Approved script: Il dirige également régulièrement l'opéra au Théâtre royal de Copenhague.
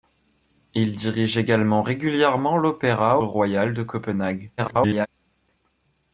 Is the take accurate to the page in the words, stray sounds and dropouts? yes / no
no